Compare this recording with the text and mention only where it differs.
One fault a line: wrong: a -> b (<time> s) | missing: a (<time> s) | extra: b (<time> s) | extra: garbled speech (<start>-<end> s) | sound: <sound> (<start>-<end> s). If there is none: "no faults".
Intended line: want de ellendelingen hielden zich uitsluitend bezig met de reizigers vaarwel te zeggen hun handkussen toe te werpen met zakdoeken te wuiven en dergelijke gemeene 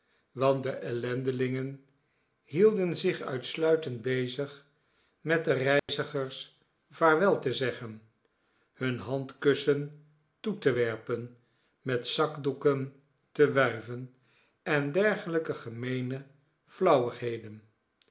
sound: dropout (5.8-5.9 s)